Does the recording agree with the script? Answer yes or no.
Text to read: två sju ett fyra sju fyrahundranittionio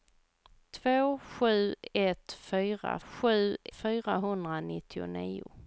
yes